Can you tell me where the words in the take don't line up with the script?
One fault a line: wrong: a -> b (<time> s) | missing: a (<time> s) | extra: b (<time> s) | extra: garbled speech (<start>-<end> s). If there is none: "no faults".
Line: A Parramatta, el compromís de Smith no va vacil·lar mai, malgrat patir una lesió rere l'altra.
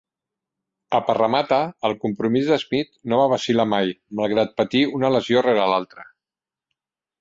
no faults